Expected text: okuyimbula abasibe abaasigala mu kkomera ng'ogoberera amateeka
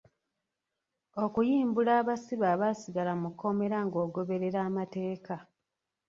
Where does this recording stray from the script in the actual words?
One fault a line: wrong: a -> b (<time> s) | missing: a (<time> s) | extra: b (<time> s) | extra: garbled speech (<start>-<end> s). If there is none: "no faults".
no faults